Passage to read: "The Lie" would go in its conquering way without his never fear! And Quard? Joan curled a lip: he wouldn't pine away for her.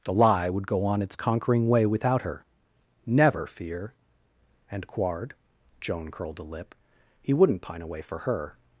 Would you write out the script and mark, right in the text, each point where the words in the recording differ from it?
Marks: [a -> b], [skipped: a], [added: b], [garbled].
"The Lie" would go [in -> on] its conquering way without [his -> her] never fear! And Quard? Joan curled a lip: he wouldn't pine away for her.